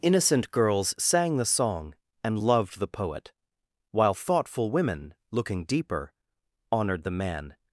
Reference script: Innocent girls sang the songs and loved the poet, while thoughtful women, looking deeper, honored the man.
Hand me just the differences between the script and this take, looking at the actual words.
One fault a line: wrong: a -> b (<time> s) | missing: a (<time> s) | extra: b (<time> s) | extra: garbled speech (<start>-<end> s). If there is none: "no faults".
wrong: songs -> song (1.4 s)